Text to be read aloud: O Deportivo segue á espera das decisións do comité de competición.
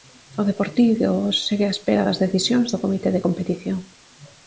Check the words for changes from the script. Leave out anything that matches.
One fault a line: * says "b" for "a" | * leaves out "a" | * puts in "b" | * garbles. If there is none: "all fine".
all fine